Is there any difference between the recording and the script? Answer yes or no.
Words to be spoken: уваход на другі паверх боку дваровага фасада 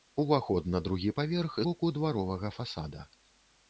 no